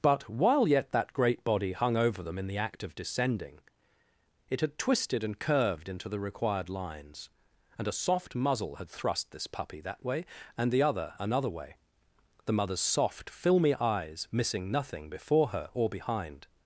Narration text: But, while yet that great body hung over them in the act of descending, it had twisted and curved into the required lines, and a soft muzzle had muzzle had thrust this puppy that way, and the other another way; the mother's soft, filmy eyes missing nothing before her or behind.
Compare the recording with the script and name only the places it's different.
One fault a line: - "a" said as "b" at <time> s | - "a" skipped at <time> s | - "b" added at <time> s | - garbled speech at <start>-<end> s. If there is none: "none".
- "muzzle had" skipped at 8.9 s